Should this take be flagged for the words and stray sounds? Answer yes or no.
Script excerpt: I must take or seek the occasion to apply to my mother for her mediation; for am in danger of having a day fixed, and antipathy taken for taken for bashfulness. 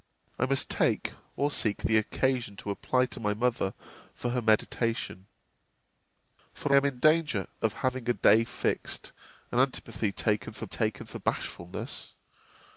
no